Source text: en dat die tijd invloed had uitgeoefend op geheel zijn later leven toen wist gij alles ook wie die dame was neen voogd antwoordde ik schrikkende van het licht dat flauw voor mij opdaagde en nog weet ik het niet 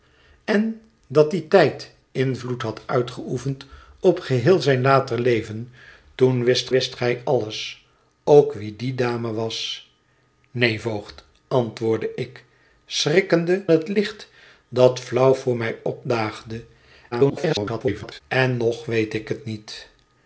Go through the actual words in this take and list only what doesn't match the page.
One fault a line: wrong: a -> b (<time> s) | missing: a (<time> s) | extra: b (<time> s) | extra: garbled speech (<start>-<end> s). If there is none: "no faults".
extra: wist (6.7 s)
missing: van (13.7 s)
extra: garbled speech (17.1-18.2 s)